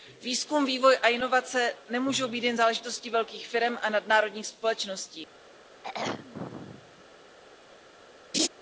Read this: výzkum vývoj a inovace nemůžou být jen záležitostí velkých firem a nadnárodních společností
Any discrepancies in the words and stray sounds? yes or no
yes